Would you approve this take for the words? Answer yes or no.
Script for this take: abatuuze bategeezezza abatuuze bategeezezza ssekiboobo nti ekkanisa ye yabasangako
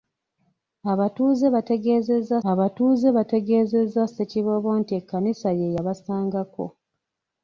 yes